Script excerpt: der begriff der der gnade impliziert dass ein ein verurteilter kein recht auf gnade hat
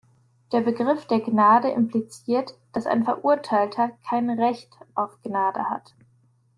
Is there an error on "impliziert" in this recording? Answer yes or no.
no